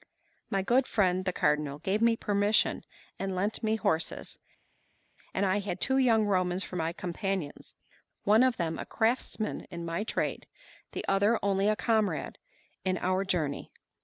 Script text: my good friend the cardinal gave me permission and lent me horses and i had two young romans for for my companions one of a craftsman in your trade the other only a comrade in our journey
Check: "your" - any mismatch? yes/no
yes